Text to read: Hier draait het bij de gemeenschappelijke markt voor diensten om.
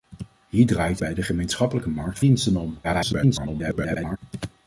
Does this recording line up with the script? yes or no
no